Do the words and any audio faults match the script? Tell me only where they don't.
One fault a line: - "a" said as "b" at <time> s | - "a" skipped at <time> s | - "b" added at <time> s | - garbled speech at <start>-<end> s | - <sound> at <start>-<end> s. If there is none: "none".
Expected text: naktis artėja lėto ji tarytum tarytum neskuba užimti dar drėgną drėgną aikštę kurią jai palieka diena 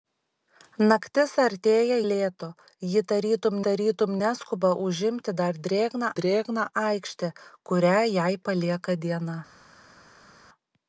none